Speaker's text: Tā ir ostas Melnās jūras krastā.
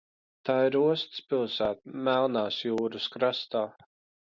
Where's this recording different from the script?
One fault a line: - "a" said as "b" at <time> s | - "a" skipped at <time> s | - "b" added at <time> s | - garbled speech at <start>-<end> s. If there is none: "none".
- "pilsēta" added at 1.3 s